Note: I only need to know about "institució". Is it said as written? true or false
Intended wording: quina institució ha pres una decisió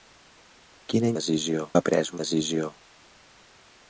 false